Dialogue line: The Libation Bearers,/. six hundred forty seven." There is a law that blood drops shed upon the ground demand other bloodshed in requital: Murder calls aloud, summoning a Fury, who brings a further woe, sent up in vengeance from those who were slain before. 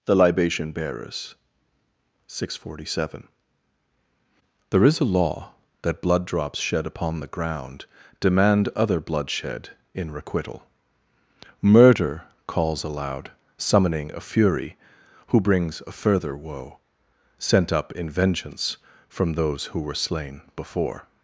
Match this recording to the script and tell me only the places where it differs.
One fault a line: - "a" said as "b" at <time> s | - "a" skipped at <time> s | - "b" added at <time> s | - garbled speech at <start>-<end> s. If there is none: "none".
none